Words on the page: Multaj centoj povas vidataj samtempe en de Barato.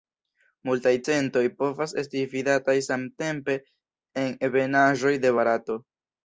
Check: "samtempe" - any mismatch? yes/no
no